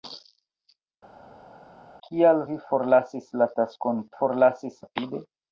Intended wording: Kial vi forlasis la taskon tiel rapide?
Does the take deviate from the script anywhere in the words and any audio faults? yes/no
yes